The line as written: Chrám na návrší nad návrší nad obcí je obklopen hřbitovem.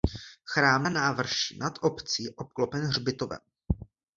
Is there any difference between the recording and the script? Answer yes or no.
yes